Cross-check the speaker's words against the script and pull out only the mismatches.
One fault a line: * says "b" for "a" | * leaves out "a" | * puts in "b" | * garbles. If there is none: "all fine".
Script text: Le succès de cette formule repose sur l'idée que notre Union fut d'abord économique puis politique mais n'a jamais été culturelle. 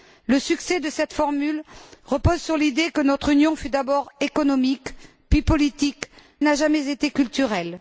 * leaves out "mais"